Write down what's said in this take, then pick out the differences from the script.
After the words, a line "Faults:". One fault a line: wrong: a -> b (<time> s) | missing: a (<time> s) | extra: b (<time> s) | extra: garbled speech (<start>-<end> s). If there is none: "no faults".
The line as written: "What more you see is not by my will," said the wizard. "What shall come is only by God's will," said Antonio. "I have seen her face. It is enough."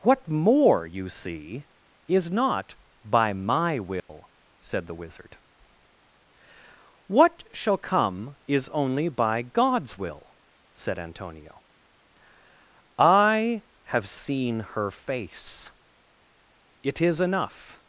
"What more you see is not by my will," said the wizard. "What shall come is only by God's will," said Antonio. "I have seen her face. It is enough."
Faults:
no faults